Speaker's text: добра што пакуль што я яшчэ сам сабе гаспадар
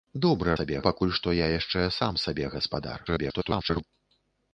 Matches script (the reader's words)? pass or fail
fail